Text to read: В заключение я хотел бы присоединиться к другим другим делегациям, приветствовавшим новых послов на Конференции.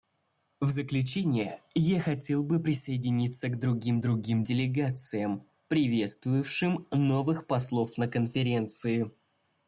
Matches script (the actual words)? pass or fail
pass